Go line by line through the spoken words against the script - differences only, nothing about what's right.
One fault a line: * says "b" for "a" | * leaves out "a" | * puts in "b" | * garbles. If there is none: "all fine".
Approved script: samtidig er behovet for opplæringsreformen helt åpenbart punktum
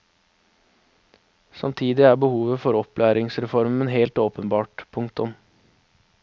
all fine